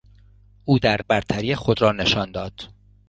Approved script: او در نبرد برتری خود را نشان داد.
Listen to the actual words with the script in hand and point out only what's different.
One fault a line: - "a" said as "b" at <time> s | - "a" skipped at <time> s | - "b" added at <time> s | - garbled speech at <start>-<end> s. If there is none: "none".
- "نبرد" skipped at 1.0 s